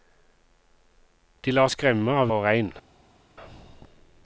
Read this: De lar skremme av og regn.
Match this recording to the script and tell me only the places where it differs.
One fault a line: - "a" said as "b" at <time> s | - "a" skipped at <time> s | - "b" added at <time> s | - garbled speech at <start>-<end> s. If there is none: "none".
none